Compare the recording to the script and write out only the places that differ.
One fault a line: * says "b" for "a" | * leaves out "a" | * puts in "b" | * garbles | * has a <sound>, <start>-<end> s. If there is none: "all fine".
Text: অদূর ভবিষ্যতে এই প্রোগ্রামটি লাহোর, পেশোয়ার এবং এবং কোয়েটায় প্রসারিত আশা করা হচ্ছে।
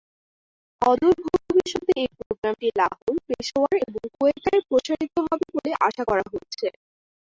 * has a dropout, 2.3-2.3 s
* leaves out "এবং"
* puts in "হবে বলে"